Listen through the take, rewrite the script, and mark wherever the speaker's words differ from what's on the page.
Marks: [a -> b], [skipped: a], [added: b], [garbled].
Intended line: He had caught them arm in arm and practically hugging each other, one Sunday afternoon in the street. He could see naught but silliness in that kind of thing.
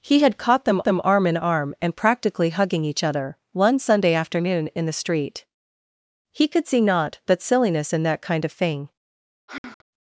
He had caught them [added: them] arm in arm and practically hugging each other, one Sunday afternoon in the street. He could see naught but silliness in that kind of thing.